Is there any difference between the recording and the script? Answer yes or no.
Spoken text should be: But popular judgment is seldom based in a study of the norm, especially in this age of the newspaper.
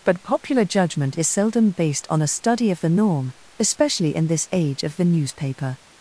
yes